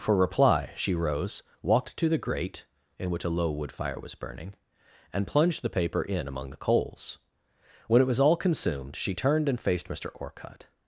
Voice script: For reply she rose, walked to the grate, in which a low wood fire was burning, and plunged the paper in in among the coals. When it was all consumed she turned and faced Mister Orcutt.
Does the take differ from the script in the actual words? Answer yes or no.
yes